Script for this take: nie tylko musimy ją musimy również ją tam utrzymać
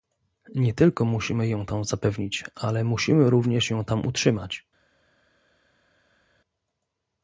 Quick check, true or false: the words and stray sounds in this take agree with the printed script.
false